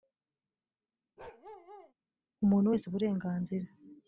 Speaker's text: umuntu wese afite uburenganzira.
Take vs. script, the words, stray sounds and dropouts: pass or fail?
fail